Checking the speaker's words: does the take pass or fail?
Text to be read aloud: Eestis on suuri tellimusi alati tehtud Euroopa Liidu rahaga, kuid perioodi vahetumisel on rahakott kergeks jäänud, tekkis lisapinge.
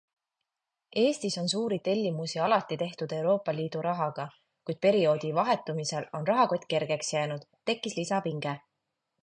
pass